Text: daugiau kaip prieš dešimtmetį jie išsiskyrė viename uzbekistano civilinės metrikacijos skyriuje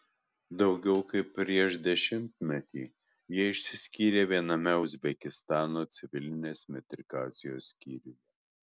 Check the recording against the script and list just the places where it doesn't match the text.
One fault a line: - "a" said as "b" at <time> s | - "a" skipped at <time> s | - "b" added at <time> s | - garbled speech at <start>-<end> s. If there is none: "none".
none